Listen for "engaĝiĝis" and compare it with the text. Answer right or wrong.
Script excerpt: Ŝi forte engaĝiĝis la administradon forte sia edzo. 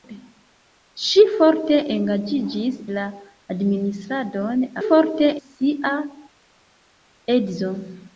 right